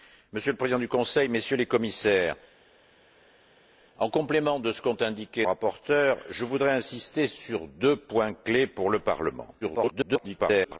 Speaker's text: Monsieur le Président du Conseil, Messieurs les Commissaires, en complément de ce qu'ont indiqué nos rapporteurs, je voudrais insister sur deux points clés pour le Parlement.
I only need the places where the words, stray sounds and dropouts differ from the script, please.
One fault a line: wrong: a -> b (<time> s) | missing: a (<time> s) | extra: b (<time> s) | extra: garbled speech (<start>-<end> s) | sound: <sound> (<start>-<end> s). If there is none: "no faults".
missing: nos (5.5 s)
extra: garbled speech (9.6-10.8 s)